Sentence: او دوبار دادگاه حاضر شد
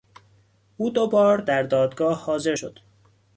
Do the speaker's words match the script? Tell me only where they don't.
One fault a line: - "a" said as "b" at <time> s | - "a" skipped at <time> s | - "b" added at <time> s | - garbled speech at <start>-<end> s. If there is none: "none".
- "در" added at 1.4 s